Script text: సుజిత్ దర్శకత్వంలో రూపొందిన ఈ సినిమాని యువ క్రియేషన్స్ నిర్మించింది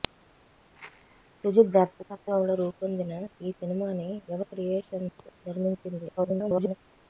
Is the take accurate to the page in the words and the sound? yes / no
no